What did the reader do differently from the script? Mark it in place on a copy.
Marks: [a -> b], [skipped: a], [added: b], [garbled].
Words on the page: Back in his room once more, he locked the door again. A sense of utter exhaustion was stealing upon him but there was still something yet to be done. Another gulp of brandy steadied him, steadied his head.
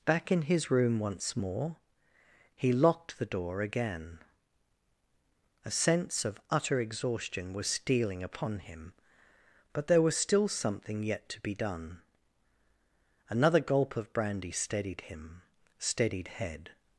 Back in his room once more, he locked the door again. A sense of utter exhaustion was stealing upon him but there was still something yet to be done. Another gulp of brandy steadied him, steadied [skipped: his] head.